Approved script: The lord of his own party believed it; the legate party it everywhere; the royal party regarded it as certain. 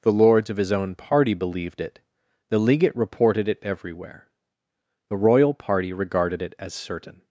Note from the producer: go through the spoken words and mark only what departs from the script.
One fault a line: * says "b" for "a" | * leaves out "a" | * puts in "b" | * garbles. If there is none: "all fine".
* says "lords" for "lord"
* says "reported" for "party"